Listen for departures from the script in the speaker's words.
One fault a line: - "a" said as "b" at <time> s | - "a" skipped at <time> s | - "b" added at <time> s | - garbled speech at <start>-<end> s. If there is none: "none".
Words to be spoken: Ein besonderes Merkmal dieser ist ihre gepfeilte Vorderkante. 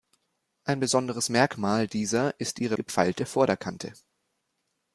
none